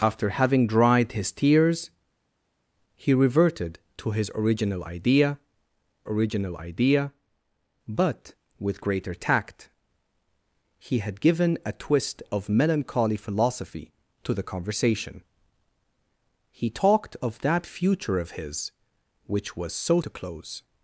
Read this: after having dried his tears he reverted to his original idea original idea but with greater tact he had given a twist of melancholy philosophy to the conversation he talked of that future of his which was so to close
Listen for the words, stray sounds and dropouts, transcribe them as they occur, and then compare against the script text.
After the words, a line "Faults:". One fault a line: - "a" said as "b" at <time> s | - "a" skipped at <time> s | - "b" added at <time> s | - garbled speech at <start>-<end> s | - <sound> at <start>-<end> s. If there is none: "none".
after having dried his tears he reverted to his original idea original idea but with greater tact he had given a twist of melancholy philosophy to the conversation he talked of that future of his which was so to close
Faults:
none